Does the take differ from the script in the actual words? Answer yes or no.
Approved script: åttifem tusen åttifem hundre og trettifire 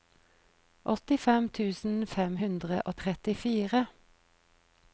yes